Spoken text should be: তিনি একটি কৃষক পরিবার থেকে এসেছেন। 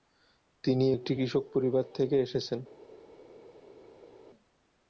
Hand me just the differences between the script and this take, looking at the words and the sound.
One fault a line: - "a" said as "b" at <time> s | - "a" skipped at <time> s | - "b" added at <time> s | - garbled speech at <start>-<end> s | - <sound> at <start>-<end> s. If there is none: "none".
none